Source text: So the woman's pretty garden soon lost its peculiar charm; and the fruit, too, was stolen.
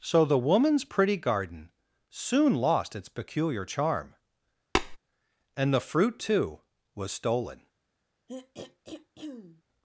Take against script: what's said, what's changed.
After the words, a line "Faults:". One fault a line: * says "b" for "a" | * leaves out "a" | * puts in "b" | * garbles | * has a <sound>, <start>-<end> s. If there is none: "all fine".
So the woman's pretty garden soon lost its peculiar charm; and the fruit, too, was stolen.
Faults:
* has a tap, 4.8-5.0 s
* has a throat clearing, 8.3-9.6 s